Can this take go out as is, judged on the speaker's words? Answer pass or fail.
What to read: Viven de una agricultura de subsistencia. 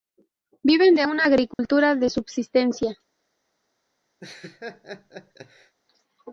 pass